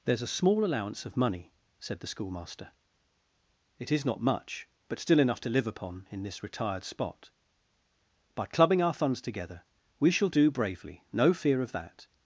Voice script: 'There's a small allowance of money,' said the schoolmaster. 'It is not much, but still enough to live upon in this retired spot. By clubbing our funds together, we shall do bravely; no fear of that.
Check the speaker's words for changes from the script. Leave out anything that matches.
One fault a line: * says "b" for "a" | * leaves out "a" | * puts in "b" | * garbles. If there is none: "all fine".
all fine